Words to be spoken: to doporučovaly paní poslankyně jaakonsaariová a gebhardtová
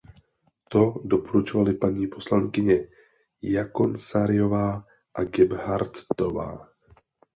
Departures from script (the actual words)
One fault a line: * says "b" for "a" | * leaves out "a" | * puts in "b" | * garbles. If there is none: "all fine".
all fine